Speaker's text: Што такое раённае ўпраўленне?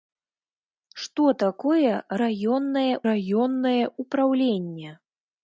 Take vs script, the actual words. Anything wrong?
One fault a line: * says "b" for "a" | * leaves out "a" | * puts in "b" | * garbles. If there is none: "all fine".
* puts in "раённае"